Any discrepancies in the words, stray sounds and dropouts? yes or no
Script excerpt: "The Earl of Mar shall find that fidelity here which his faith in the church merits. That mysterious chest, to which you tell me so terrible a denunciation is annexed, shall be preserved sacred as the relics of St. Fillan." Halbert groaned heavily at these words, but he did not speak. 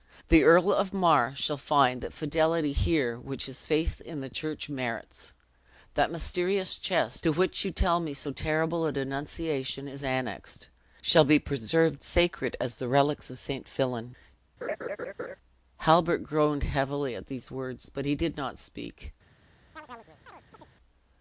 yes